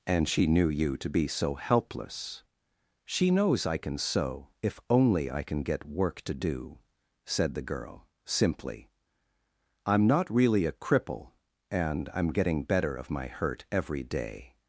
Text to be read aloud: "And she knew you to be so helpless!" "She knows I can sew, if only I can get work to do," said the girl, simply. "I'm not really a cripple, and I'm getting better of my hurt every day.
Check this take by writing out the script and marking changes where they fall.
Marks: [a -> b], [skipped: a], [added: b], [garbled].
"And she knew you to be so helpless!" "She knows I can sew, if only I can get work to do," said the girl, simply. "I'm not really a cripple, and I'm getting better of my hurt every day.